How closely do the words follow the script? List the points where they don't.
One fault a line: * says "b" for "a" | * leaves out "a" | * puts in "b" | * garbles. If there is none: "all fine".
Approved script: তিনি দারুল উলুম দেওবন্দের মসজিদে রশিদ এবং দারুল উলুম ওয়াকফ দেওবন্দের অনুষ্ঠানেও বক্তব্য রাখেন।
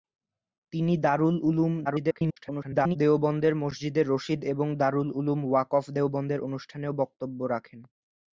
* garbles